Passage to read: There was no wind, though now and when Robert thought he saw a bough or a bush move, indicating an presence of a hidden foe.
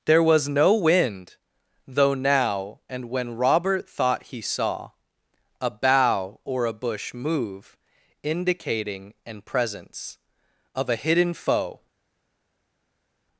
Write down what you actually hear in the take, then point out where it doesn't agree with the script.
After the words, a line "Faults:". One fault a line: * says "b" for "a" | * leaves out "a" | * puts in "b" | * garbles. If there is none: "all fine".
There was no wind, though now and when Robert thought he saw a bough or a bush move, indicating an presence of a hidden foe.
Faults:
all fine